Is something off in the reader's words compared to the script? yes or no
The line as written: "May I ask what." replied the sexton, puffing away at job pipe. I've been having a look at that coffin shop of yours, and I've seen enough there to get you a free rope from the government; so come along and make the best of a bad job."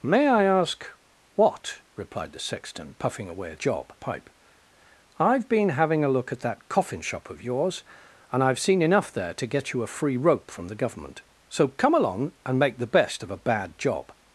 no